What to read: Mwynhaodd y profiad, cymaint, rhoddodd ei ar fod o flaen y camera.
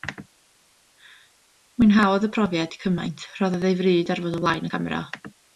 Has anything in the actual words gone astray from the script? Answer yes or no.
yes